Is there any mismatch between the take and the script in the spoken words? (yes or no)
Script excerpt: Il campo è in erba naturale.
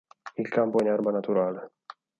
no